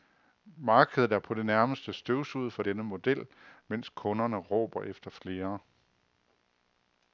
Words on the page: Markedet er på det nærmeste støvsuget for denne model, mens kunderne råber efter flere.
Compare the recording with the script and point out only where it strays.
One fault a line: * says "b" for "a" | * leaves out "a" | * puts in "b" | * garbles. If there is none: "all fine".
all fine